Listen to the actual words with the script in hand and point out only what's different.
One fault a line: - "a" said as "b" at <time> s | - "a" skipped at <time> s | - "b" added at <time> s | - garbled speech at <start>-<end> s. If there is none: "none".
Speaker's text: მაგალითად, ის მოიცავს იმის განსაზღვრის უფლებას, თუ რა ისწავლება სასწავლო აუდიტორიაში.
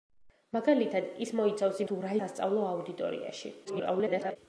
- "იმის განსაზღვრის უფლებას" skipped at 1.8 s
- "ისწავლება" skipped at 2.1 s
- garbled speech at 3.6-4.4 s